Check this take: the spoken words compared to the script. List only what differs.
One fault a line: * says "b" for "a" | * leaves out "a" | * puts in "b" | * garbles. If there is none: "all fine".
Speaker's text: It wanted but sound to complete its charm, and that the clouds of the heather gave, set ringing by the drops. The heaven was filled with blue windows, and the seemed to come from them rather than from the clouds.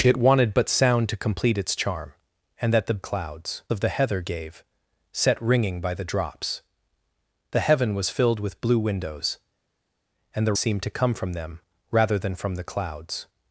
all fine